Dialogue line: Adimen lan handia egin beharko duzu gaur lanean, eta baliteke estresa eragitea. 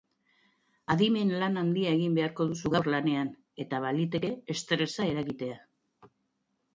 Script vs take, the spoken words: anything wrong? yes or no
no